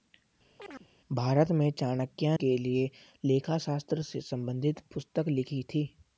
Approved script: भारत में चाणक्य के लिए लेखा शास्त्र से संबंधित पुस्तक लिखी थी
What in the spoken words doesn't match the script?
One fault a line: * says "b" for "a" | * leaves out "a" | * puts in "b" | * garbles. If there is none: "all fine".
all fine